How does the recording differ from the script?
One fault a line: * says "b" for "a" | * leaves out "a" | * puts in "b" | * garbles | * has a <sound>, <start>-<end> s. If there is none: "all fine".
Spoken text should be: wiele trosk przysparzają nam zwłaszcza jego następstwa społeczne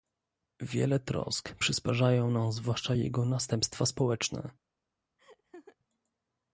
* has a laugh, 5.2-5.8 s